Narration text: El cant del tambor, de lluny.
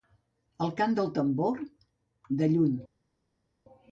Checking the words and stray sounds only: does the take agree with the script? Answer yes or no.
yes